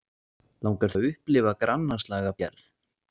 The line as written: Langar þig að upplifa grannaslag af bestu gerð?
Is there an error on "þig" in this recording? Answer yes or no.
yes